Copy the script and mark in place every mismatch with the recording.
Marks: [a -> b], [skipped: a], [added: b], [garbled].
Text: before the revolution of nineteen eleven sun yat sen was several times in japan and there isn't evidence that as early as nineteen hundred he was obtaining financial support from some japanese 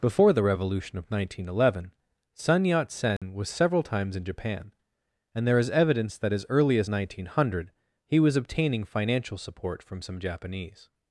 before the revolution of nineteen eleven sun yat sen was several times in japan and there [isn't -> is] evidence that as early as nineteen hundred he was obtaining financial support from some japanese